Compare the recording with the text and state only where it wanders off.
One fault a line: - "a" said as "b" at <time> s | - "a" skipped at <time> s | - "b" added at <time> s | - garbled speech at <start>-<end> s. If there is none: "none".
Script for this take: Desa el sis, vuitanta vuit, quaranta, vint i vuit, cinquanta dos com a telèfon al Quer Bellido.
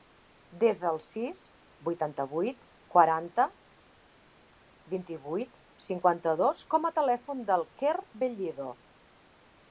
- "al" said as "del" at 7.5 s